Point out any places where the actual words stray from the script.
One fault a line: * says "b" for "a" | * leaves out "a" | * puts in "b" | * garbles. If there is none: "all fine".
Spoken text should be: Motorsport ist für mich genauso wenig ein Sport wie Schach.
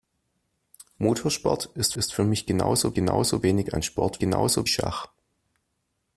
* puts in "ist"
* puts in "genauso"
* says "genauso" for "wie"